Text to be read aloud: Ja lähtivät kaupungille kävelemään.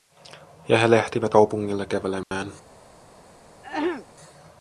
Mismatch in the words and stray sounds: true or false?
true